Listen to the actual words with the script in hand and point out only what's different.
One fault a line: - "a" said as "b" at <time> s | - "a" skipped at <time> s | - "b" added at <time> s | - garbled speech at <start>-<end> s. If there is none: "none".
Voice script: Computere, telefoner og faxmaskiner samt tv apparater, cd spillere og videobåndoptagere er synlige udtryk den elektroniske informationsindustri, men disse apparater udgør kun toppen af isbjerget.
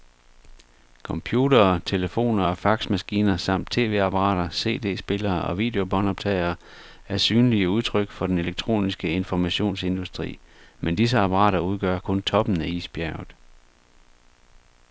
- "for" added at 8.1 s